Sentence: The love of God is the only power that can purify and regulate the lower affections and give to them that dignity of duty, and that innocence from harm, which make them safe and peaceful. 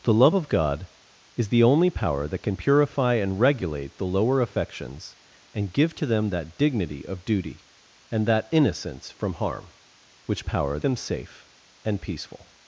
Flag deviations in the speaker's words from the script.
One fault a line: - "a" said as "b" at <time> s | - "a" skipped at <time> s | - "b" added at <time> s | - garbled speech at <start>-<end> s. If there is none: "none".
- "make" said as "power" at 10.4 s